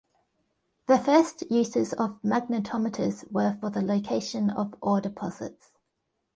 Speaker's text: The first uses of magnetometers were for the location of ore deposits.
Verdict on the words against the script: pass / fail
pass